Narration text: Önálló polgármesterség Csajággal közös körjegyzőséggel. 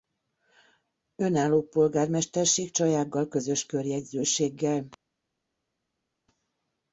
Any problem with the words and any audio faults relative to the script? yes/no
no